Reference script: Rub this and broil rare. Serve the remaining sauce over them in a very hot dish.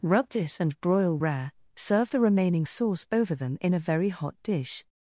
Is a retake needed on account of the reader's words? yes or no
no